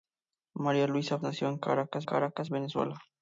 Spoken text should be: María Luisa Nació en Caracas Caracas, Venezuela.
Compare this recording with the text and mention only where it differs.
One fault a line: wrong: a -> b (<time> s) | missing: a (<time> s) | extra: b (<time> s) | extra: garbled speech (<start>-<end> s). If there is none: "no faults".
no faults